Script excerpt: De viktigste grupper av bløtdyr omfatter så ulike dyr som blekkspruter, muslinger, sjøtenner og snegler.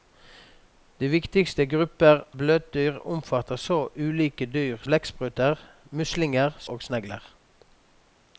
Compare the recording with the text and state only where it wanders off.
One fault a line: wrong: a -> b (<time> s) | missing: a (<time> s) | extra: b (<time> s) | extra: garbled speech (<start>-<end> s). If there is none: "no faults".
missing: av (2.2 s)
missing: som (4.8 s)
missing: sjøtenner (6.6 s)